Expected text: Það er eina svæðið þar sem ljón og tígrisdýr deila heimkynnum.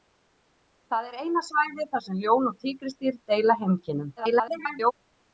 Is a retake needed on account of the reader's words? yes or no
yes